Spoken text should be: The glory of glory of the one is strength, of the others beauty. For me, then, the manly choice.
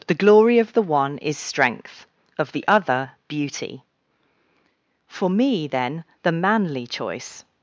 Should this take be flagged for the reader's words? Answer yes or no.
yes